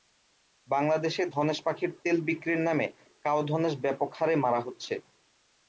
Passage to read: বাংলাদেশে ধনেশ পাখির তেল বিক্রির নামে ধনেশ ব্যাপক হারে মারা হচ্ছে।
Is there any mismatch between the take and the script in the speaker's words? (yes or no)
yes